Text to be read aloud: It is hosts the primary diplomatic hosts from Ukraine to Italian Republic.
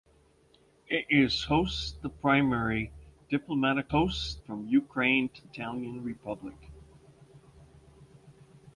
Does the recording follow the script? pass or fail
pass